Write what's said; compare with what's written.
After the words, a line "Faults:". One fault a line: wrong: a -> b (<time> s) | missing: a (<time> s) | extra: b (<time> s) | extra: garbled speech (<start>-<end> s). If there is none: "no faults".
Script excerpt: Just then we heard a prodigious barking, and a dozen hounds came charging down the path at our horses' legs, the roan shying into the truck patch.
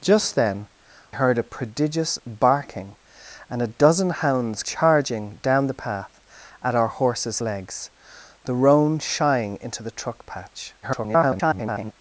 Just then heard a prodigious barking, and a dozen hounds charging down the path at our horses' legs, the roan shying into the truck patch. [garbled]
Faults:
missing: we (0.7 s)
missing: came (4.6 s)
extra: garbled speech (10.8-11.9 s)